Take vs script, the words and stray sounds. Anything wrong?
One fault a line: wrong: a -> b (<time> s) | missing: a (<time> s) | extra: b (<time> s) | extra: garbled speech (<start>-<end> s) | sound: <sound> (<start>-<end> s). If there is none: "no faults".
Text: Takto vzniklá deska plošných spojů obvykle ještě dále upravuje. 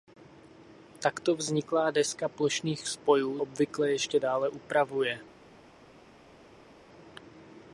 no faults